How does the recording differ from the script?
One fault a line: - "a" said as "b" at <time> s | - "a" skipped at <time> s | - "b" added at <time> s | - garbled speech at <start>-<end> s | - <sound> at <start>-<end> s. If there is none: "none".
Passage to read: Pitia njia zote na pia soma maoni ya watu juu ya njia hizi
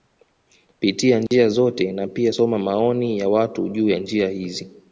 - dropout at 1.3-1.3 s